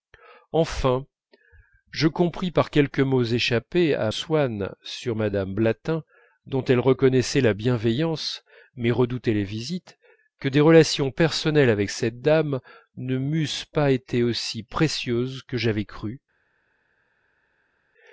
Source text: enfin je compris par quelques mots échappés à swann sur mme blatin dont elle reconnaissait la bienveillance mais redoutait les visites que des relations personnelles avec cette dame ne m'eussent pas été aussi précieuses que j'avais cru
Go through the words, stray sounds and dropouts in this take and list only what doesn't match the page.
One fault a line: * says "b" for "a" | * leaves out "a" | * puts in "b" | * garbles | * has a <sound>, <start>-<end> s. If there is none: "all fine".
all fine